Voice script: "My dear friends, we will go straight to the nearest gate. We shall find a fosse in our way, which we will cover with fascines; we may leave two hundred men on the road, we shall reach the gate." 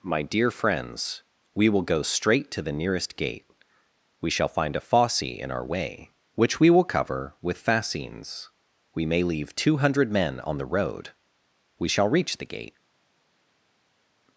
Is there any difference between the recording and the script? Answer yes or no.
no